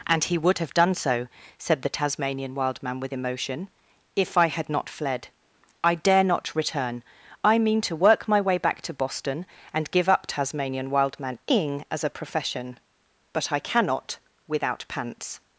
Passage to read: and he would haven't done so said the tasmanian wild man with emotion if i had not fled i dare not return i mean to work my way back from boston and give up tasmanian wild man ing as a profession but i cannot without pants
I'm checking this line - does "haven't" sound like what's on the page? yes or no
no